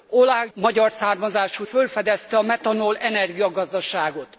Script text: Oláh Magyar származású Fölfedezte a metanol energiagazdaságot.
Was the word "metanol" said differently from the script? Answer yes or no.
no